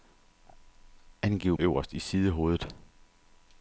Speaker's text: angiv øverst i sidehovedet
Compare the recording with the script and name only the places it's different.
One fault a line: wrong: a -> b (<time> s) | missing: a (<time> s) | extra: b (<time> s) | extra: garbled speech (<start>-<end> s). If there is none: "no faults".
no faults